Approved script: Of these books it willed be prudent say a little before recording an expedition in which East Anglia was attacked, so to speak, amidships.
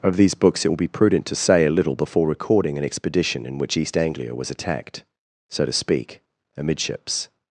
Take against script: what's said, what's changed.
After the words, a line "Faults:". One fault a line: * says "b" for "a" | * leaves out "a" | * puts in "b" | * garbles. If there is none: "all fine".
Of these books it will be prudent to say a little before recording an expedition in which East Anglia was attacked, so to speak, amidships.
Faults:
* says "will" for "willed"
* puts in "to"